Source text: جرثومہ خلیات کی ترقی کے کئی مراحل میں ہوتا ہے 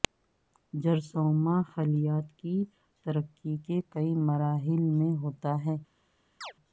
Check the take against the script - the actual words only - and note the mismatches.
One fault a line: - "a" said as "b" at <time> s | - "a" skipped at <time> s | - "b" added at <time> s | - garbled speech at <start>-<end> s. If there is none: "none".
none